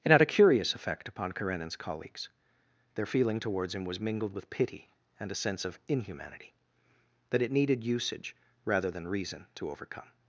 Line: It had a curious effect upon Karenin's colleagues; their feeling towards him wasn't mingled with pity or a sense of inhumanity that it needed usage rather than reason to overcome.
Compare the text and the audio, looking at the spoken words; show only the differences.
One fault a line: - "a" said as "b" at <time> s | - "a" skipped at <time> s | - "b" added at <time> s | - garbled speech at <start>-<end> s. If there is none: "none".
- "wasn't" said as "was" at 3.9 s
- "or" said as "and" at 5.2 s